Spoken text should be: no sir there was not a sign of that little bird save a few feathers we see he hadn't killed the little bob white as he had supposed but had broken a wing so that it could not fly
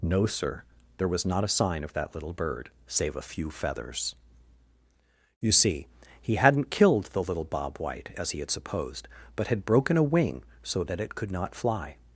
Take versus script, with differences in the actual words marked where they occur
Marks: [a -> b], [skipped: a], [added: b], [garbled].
no sir there was not a sign of that little bird save a few feathers [we -> you] see he hadn't killed the little bob white as he had supposed but had broken a wing so that it could not fly